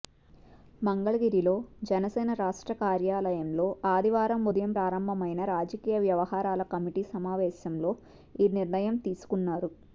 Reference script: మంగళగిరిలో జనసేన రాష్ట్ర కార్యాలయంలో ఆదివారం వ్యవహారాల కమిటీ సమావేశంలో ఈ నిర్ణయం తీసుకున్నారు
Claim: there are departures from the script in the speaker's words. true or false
true